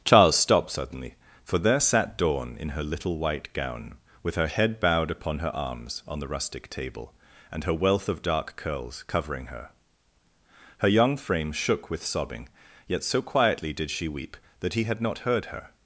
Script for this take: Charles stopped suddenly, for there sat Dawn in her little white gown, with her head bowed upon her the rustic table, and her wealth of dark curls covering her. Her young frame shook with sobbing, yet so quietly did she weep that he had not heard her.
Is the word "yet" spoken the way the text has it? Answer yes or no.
yes